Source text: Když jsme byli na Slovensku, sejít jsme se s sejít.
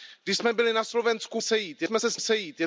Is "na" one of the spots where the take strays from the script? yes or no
no